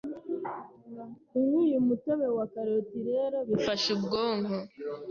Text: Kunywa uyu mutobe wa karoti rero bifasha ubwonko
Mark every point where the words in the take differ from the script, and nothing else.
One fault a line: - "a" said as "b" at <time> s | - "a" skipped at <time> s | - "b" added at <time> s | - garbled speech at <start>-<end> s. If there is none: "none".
none